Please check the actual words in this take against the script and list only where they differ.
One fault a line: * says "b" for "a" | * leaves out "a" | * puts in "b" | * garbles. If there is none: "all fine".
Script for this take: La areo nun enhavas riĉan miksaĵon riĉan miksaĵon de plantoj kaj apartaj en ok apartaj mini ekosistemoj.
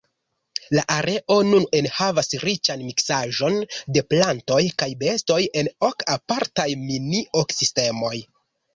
* leaves out "riĉan miksaĵon"
* says "bestoj" for "apartaj"